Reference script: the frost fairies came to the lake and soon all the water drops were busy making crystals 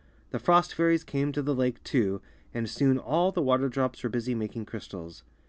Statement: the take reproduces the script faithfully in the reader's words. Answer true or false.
false